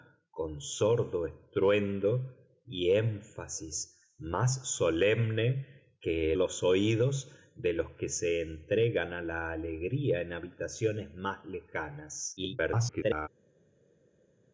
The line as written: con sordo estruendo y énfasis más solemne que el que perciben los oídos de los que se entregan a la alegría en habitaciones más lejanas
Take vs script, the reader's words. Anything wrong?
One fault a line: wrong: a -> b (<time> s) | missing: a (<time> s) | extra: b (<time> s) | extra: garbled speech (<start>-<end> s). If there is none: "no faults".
missing: el que perciben (6.3 s)
extra: garbled speech (12.4-13.3 s)